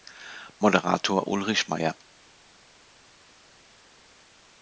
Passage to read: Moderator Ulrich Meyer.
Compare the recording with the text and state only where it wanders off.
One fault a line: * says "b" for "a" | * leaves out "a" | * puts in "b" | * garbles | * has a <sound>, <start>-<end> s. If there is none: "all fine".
all fine